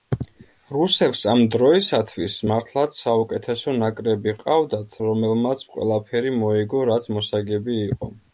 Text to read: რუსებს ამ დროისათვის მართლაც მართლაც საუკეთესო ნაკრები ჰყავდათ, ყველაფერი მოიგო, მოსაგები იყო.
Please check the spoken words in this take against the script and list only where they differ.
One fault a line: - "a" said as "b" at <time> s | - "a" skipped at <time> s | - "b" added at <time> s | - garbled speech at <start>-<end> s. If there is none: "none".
- "მართლაც" skipped at 3.0 s
- "რომელმაც" added at 5.1 s
- "რაც" added at 6.9 s